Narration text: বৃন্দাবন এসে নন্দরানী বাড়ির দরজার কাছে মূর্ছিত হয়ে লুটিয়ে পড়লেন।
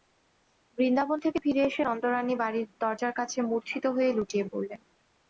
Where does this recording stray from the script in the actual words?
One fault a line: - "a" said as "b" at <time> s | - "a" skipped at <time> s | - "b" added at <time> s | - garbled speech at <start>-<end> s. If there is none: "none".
- "থেকে ফিরে" added at 1.2 s